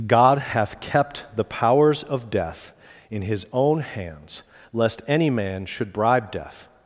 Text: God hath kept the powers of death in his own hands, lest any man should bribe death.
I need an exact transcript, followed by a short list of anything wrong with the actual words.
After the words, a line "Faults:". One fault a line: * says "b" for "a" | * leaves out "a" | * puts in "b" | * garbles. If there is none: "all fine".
God hath kept the powers of death in his own hands, lest any man should bribe death.
Faults:
all fine